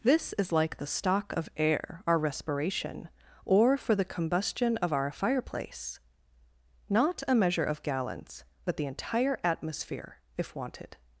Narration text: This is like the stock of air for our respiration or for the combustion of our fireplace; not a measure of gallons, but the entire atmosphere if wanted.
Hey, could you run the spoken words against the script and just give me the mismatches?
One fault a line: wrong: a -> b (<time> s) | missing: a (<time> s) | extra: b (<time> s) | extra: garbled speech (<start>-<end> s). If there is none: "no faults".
missing: for (2.0 s)